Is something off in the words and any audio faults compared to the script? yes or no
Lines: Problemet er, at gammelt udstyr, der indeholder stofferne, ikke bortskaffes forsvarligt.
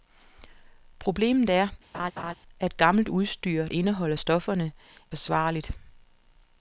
yes